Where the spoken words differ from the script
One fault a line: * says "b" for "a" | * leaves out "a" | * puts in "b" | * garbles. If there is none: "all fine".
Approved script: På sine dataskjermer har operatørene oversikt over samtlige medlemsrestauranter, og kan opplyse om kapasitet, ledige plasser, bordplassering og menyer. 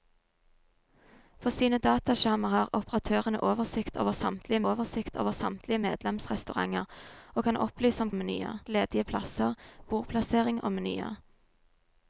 * puts in "oversikt over samtlige"
* says "menyer" for "kapasitet"